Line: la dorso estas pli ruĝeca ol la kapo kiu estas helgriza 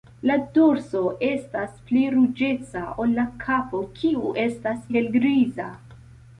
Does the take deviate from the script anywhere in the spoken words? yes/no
no